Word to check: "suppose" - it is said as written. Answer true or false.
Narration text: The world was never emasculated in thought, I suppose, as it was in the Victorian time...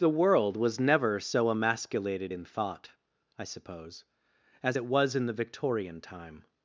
true